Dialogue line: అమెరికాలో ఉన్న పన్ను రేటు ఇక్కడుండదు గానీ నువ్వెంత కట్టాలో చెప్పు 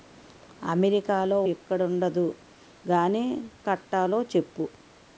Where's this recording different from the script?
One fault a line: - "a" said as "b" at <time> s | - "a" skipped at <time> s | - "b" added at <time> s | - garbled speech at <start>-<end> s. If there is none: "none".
- "ఉన్న పన్ను రేటు" skipped at 1.4 s
- "నువ్వెంత" skipped at 3.2 s